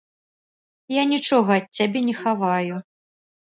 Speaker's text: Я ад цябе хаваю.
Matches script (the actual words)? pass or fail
fail